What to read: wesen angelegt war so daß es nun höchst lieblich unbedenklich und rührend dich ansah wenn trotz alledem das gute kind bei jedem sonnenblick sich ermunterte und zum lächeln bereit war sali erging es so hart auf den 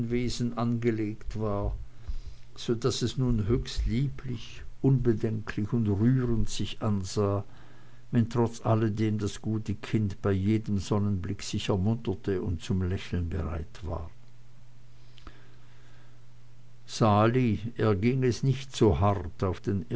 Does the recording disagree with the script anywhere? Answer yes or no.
yes